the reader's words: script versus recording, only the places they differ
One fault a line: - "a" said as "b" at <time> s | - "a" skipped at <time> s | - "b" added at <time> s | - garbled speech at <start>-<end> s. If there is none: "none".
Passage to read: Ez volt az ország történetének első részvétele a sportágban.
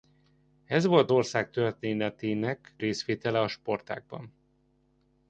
- "az" skipped at 1.1 s
- "első" skipped at 2.7 s